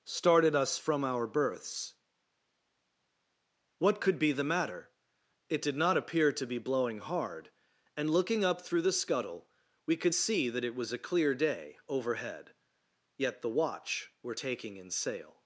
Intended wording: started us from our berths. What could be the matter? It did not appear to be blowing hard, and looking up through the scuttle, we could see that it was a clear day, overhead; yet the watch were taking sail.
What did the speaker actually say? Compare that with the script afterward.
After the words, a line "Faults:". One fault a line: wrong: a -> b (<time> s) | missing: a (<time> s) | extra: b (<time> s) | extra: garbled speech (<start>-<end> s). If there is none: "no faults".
started us from our berths. What could be the matter? It did not appear to be blowing hard, and looking up through the scuttle, we could see that it was a clear day, overhead; yet the watch were taking in sail.
Faults:
extra: in (14.8 s)